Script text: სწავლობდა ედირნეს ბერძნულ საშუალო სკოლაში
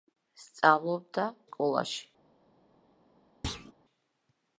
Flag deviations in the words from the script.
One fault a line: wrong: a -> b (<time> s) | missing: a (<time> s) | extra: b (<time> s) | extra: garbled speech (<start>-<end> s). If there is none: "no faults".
missing: ედირნეს ბერძნულ საშუალო (1.2 s)